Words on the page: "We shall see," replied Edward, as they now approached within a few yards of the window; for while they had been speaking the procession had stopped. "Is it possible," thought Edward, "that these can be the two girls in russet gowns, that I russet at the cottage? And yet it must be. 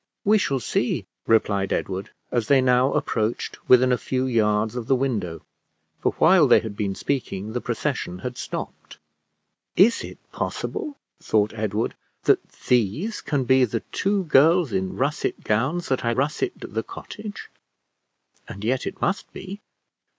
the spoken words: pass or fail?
pass